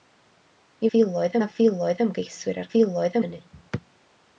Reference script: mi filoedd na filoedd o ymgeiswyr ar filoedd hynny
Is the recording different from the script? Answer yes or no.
no